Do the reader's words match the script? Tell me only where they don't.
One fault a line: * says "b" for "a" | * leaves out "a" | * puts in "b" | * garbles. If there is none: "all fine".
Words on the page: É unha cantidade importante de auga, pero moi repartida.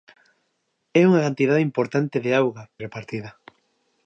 * leaves out "pero moi"